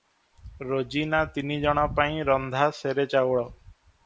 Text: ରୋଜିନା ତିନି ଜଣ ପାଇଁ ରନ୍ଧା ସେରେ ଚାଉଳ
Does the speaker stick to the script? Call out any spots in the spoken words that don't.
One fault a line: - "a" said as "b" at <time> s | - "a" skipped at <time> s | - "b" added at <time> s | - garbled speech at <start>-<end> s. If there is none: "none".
none